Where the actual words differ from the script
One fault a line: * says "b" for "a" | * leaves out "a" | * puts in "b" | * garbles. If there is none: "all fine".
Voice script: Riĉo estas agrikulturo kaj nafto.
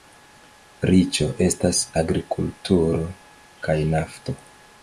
all fine